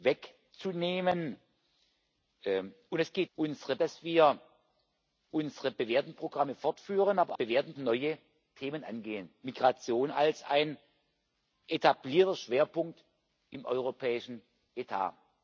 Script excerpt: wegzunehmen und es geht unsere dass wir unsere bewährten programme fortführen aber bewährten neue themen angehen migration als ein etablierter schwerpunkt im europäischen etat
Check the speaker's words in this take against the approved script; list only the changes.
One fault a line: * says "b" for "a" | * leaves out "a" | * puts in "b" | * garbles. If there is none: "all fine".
all fine